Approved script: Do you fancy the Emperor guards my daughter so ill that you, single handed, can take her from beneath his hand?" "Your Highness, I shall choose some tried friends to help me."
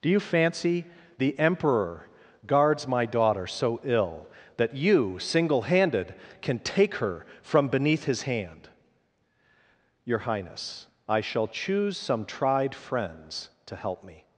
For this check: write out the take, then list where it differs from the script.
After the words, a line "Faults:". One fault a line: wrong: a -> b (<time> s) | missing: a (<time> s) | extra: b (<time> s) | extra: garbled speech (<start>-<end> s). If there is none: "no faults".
Do you fancy the Emperor guards my daughter so ill that you, single handed, can take her from beneath his hand?" "Your Highness, I shall choose some tried friends to help me."
Faults:
no faults